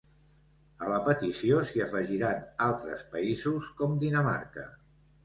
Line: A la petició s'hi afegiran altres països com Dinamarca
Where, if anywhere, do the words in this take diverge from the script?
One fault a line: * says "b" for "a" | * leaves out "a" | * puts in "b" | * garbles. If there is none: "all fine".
all fine